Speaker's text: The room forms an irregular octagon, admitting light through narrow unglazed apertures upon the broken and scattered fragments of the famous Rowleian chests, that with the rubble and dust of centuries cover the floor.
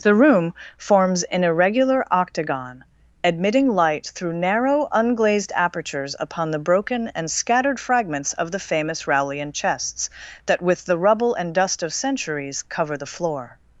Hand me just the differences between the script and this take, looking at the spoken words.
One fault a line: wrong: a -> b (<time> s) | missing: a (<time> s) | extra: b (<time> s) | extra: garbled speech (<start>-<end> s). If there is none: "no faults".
no faults